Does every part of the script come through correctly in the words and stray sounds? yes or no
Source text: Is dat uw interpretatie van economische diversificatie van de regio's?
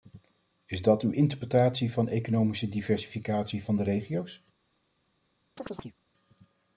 no